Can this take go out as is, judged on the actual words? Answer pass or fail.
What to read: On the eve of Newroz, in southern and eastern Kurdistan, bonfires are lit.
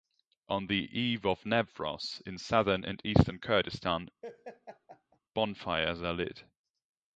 pass